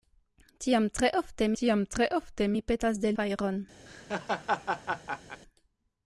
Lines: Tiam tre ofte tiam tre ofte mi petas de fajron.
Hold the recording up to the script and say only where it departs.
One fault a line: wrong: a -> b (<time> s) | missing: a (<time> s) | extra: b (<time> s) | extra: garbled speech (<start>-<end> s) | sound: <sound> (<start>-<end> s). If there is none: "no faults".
sound: laugh (3.9-5.4 s)